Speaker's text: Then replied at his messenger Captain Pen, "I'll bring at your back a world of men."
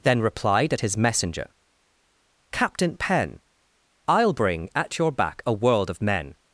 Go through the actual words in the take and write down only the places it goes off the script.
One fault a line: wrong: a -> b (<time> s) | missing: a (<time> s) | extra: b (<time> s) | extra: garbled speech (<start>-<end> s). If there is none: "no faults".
no faults